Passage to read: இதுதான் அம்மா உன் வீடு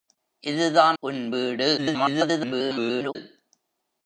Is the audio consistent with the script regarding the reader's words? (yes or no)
no